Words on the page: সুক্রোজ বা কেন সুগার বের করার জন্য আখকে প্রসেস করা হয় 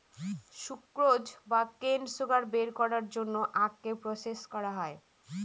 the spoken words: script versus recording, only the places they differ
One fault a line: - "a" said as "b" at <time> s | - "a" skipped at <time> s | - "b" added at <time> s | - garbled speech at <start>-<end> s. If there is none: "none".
none